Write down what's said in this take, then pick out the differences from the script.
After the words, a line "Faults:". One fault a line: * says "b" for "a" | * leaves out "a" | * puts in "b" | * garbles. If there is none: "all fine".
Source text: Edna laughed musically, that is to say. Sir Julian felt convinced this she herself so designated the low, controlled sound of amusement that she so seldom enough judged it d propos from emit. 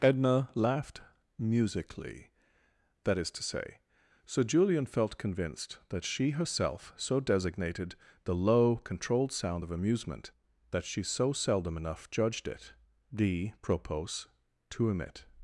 Edna laughed musically, that is to say. Sir Julian felt convinced that she herself so designated the low, controlled sound of amusement that she so seldom enough judged it d propos to emit.
Faults:
* says "that" for "this"
* says "to" for "from"